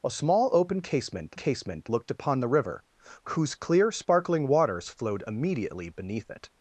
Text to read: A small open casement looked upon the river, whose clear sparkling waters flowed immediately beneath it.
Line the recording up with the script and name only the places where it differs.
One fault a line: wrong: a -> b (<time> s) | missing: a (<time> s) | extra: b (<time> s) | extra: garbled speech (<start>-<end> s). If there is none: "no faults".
extra: casement (1.3 s)